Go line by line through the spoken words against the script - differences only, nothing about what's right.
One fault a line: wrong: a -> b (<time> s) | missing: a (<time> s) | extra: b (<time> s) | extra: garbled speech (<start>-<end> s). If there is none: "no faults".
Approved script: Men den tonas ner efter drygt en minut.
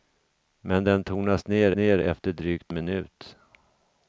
extra: ner (1.7 s)
missing: en (2.7 s)